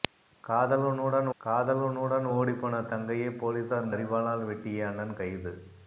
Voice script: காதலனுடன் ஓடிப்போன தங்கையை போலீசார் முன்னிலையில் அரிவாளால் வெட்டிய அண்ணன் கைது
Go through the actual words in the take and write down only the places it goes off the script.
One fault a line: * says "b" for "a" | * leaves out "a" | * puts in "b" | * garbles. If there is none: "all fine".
* puts in "காதலனுடன்"
* leaves out "முன்னிலையில்"